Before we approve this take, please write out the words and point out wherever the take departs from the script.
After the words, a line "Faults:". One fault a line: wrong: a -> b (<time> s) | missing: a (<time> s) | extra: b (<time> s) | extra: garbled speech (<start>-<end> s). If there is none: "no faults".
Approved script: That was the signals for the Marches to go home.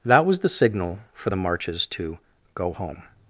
That was the signal for the Marches to go home.
Faults:
wrong: signals -> signal (0.5 s)